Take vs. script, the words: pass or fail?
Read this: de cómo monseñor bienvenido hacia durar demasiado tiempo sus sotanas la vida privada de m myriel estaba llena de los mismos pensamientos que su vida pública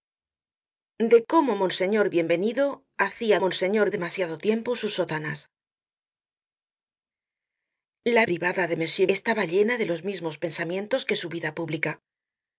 fail